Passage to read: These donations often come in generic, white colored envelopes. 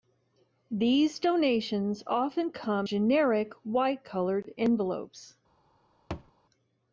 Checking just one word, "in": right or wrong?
wrong